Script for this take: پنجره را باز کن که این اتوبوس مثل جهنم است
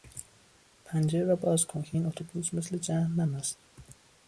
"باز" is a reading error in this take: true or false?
false